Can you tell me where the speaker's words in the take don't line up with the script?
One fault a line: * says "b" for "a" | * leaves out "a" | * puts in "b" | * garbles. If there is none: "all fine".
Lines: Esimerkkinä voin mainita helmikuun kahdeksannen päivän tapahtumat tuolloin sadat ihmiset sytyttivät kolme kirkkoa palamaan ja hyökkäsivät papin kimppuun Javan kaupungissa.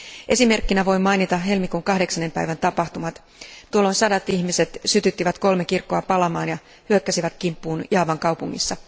* leaves out "papin"